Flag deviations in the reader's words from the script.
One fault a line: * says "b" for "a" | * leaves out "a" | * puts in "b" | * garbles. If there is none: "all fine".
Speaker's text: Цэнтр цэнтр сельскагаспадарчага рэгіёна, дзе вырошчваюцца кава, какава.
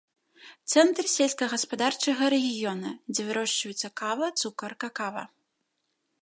* leaves out "цэнтр"
* puts in "цукар"